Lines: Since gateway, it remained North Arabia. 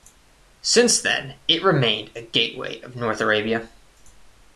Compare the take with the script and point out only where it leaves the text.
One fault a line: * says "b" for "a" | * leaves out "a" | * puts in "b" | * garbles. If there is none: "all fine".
* says "then" for "gateway"
* puts in "a gateway of"